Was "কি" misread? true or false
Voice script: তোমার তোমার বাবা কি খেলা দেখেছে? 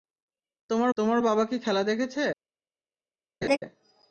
false